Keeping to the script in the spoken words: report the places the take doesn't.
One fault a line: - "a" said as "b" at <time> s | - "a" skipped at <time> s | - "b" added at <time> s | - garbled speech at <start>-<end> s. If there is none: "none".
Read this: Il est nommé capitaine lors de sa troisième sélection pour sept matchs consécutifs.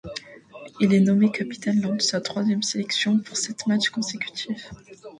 none